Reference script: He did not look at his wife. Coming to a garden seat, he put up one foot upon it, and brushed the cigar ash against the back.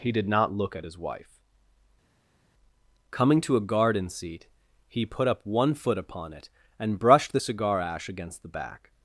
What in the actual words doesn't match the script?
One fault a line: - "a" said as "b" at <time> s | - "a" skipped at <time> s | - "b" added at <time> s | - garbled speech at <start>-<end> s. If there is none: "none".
none